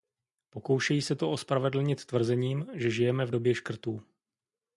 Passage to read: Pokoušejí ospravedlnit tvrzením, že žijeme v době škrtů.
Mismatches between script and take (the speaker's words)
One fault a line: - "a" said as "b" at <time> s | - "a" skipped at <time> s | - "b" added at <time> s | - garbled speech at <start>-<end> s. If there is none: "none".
- "se to" added at 1.0 s